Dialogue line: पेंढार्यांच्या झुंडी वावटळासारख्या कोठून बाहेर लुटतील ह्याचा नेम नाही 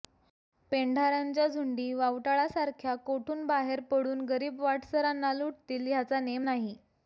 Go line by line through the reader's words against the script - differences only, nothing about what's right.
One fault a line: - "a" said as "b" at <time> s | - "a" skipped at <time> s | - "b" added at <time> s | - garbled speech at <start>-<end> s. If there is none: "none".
- "पडून गरीब वाटसरांना" added at 3.9 s